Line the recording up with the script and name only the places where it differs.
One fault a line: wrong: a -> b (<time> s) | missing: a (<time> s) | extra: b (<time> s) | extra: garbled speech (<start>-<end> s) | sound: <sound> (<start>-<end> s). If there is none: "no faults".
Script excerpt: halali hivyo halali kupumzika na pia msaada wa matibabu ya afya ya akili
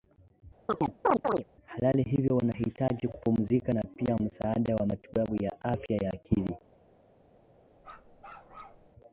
sound: chirp (0.7-1.4 s)
wrong: halali -> wanahitaji (2.4 s)
sound: bark (7.8-8.9 s)